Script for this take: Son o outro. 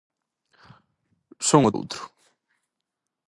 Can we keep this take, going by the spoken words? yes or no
yes